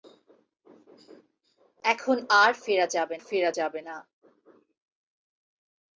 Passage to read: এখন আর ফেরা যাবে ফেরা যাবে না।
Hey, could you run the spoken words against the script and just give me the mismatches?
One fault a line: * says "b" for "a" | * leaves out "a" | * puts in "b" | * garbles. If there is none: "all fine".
all fine